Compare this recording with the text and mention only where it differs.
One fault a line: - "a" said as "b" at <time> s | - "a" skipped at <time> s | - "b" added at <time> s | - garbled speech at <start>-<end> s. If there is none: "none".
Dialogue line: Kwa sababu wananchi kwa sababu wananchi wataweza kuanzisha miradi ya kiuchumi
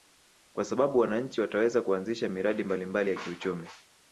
- "kwa sababu wananchi" skipped at 1.4 s
- "mbalimbali" added at 2.6 s